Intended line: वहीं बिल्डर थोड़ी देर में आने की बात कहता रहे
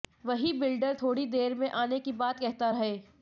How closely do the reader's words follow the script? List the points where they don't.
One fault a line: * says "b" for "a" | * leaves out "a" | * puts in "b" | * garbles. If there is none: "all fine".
all fine